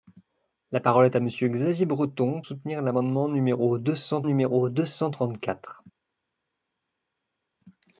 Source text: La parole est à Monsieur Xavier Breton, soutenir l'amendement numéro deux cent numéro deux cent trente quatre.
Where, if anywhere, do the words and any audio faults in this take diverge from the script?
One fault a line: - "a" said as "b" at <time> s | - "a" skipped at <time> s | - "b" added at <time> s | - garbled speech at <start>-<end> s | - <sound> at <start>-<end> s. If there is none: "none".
none